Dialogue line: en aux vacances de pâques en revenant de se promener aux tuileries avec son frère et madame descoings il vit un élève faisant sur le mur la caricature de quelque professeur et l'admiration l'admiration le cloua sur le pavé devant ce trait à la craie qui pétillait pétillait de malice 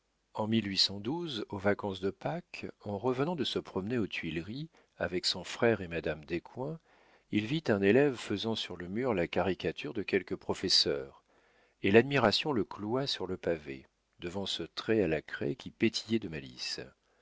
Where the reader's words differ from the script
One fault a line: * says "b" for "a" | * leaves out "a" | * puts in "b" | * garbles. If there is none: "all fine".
* leaves out "l'admiration"
* leaves out "pétillait"